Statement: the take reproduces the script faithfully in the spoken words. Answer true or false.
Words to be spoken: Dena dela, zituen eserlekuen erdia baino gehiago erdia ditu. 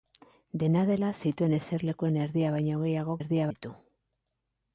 true